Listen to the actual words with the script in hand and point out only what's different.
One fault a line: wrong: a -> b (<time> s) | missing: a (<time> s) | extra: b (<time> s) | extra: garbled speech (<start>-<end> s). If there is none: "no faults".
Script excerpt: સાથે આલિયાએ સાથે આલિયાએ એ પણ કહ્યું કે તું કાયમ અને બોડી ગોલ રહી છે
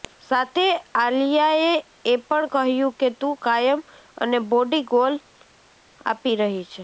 missing: સાથે આલિયાએ (1.7 s)
extra: આપી (6.1 s)